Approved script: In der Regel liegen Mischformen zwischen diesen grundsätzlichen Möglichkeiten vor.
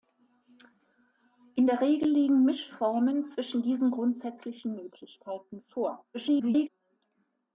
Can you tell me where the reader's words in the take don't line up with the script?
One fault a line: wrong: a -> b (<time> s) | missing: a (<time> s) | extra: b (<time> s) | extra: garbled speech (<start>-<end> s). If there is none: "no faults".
extra: garbled speech (6.1-6.7 s)